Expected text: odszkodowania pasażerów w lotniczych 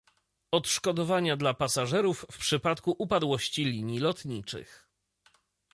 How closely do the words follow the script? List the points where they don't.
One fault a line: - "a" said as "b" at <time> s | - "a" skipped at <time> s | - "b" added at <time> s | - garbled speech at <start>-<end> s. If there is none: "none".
- "dla" added at 1.4 s
- "przypadku upadłości linii" added at 2.4 s